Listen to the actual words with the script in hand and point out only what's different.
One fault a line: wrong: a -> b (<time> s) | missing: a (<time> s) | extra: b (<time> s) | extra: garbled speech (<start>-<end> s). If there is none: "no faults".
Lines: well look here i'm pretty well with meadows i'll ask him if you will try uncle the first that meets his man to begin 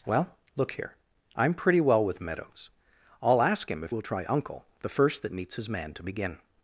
missing: you (4.0 s)